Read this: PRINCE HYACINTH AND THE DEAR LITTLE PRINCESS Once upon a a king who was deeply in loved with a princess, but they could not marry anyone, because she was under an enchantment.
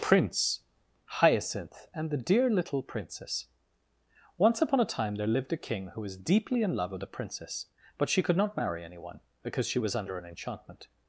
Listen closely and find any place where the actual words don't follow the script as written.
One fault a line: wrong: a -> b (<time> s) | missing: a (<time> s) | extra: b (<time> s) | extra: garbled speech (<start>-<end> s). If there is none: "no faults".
extra: time there lived (4.9 s)
wrong: loved -> love (6.8 s)
wrong: they -> she (8.1 s)